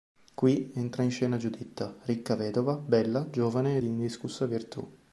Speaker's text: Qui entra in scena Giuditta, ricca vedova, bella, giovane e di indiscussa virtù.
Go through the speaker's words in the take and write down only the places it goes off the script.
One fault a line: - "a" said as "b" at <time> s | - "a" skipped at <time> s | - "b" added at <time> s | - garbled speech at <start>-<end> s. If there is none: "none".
none